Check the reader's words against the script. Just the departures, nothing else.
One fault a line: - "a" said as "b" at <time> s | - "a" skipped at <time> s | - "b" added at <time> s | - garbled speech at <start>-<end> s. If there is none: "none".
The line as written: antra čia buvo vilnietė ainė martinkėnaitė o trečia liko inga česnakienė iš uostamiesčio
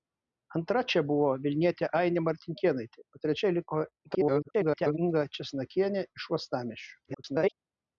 - garbled speech at 4.1-5.0 s
- garbled speech at 7.0-7.5 s